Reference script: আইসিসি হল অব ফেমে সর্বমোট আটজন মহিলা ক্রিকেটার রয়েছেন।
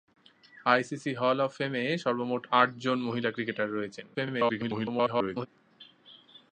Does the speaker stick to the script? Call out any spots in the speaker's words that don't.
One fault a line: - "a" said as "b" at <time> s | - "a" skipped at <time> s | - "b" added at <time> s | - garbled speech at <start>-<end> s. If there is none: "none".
- garbled speech at 4.1-5.5 s